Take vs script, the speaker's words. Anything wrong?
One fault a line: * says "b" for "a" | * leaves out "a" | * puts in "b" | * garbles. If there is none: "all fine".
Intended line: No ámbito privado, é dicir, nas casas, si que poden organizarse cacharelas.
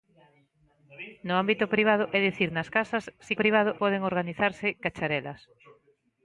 * says "privado" for "que"